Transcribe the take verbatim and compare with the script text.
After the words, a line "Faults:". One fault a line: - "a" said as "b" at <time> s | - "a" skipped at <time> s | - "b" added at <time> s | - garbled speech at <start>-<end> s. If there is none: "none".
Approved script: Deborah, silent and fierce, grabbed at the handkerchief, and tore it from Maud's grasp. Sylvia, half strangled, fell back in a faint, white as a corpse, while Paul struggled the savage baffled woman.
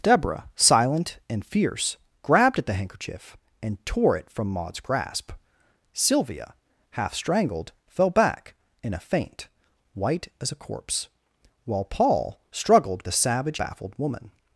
Deborah, silent and fierce, grabbed at the handkerchief, and tore it from Maud's grasp. Sylvia, half strangled, fell back in a faint, white as a corpse, while Paul struggled the savage baffled woman.
Faults:
none